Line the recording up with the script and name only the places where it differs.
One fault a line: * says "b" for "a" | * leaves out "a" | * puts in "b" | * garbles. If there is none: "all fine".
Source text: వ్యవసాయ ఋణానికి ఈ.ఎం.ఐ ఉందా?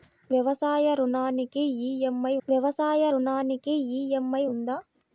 * puts in "వ్యవసాయ ఋణానికి ఈ.ఎం.ఐ"